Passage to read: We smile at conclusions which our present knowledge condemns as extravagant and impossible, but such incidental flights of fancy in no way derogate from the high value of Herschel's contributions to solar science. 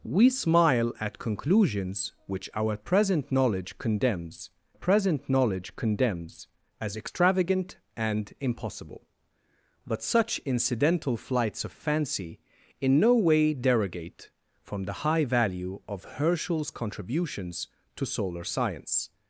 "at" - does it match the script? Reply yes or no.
yes